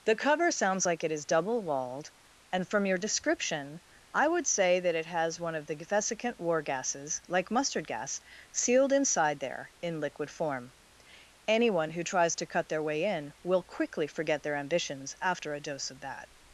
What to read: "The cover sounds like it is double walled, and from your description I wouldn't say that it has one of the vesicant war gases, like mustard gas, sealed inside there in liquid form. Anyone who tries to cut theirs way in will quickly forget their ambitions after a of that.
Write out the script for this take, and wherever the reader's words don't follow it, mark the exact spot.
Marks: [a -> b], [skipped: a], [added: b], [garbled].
"The cover sounds like it is double walled, and from your description I [wouldn't -> would] say that it has one of the vesicant war gases, like mustard gas, sealed inside there in liquid form. Anyone who tries to cut [theirs -> their] way in will quickly forget their ambitions after a [added: dose] of that.